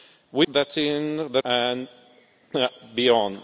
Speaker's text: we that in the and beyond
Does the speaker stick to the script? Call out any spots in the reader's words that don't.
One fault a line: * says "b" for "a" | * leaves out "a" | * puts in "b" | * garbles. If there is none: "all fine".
all fine